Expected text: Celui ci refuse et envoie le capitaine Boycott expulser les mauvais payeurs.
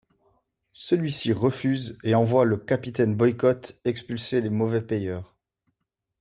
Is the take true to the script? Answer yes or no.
yes